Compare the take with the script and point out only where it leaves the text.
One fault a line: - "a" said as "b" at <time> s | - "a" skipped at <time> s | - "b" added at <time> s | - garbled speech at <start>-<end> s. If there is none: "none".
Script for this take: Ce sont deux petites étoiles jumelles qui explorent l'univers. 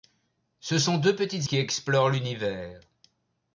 - "étoiles jumelles" skipped at 1.5 s